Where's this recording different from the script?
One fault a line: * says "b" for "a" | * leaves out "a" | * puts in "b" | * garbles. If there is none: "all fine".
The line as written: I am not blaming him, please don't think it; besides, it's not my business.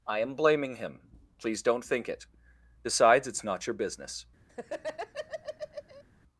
* leaves out "not"
* says "your" for "my"